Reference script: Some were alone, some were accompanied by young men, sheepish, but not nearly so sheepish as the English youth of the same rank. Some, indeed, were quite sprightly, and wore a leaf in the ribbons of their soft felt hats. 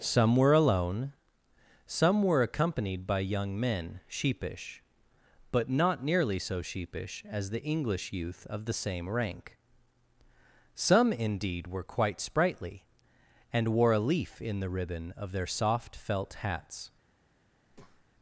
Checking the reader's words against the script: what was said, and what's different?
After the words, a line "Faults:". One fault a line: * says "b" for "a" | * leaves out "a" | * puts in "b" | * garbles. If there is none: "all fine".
Some were alone, some were accompanied by young men, sheepish, but not nearly so sheepish as the English youth of the same rank. Some, indeed, were quite sprightly, and wore a leaf in the ribbon of their soft felt hats.
Faults:
* says "ribbon" for "ribbons"